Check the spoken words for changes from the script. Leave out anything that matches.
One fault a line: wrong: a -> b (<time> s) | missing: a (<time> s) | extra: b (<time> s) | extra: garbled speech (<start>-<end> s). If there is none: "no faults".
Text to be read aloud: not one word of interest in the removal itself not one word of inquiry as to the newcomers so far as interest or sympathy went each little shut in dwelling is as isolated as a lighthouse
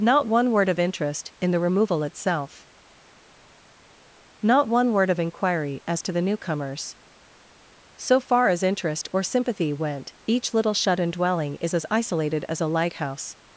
no faults